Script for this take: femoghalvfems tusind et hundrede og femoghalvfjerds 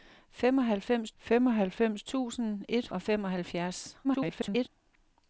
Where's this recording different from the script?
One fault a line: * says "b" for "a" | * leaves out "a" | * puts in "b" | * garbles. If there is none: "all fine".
* puts in "femoghalvfems"
* leaves out "hundrede"
* garbles